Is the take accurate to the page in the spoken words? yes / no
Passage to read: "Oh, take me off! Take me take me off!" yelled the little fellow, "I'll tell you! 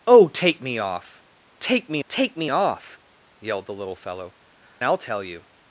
yes